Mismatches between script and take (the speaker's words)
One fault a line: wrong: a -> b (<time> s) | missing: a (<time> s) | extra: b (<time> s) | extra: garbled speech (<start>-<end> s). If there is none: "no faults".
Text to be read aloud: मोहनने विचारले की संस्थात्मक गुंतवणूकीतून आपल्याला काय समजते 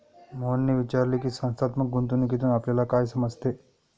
no faults